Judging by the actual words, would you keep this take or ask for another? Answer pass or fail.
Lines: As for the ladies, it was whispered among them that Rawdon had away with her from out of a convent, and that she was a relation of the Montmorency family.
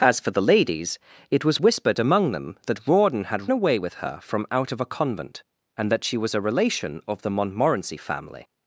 pass